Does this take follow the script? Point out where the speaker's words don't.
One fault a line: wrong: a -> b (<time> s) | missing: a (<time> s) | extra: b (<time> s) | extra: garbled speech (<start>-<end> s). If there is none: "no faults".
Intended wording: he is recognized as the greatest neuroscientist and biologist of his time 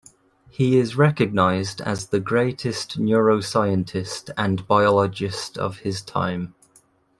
no faults